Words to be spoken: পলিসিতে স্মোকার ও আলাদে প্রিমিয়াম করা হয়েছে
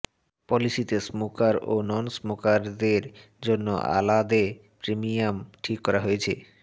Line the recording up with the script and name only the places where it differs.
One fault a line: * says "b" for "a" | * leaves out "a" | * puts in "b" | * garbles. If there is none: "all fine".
* puts in "নন স্মোকারদের জন্য"
* puts in "ঠিক"